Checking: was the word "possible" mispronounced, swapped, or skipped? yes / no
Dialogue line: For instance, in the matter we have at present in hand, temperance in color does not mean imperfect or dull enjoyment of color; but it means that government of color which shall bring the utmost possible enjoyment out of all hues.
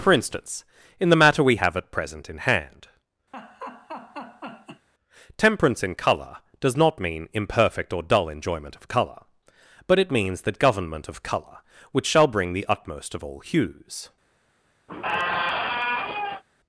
yes